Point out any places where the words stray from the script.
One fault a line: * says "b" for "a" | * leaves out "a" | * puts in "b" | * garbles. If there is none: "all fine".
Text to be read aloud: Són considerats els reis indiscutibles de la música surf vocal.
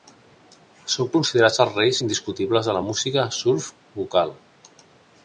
all fine